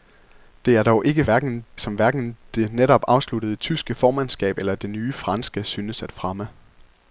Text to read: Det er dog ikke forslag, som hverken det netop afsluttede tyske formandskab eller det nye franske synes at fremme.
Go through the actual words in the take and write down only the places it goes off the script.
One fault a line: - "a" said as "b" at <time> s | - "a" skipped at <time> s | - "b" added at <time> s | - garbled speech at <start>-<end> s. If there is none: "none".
- "forslag" said as "hverken" at 1.2 s